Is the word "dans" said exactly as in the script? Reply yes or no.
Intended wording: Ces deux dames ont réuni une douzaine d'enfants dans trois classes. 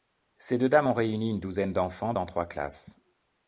yes